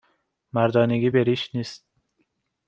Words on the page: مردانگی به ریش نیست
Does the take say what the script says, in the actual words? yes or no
yes